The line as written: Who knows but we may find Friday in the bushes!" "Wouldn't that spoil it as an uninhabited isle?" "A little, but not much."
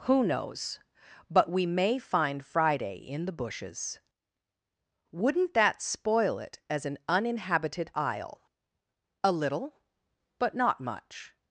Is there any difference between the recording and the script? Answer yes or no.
no